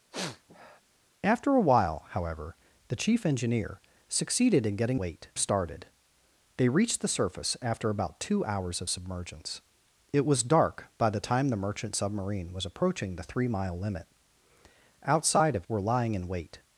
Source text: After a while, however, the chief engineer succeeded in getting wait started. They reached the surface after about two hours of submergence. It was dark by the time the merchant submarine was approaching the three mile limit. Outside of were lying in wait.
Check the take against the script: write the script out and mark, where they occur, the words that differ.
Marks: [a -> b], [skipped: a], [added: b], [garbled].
After a while, however, the chief engineer succeeded in getting wait started. They reached the surface after about two hours of submergence. It was dark by the time the merchant submarine was approaching the three mile limit. Outside of were lying in wait.